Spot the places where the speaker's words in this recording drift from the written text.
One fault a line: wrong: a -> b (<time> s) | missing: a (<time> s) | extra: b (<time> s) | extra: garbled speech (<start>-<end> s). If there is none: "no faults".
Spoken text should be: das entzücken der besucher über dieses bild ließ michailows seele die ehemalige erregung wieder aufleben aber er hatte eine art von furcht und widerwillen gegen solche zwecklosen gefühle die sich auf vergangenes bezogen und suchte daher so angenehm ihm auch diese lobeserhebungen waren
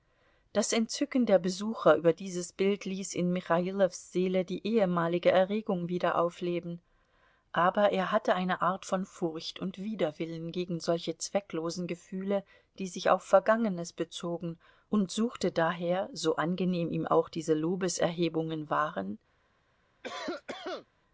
extra: in (3.1 s)